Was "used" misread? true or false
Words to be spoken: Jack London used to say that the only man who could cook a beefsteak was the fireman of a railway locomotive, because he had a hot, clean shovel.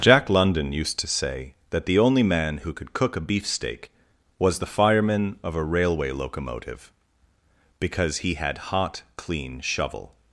false